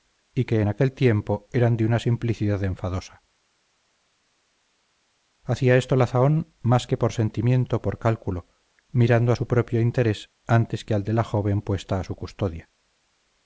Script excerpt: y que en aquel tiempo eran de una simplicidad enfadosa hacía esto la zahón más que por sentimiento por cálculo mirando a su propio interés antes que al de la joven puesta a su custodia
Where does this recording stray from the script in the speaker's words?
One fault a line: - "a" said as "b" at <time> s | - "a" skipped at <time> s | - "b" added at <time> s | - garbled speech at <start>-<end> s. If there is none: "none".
none